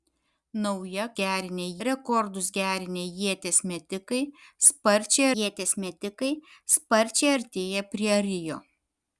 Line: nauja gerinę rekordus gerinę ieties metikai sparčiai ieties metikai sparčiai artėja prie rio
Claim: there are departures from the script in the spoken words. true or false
false